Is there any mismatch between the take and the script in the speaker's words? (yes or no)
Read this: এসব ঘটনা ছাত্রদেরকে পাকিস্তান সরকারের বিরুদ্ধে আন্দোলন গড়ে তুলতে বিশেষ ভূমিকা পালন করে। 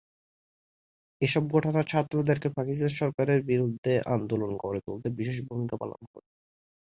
no